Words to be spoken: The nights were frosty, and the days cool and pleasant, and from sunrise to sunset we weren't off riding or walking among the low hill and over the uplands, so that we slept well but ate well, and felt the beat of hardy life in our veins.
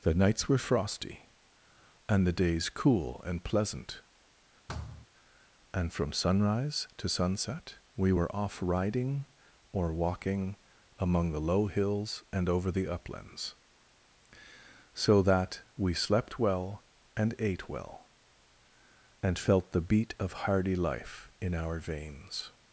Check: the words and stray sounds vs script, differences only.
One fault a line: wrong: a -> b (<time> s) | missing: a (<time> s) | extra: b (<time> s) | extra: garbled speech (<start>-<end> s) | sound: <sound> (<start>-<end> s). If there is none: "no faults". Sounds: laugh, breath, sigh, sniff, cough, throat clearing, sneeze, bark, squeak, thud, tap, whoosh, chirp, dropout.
sound: thud (4.7-5.1 s)
wrong: weren't -> were (8.1 s)
wrong: hill -> hills (11.7 s)
wrong: but -> and (17.2 s)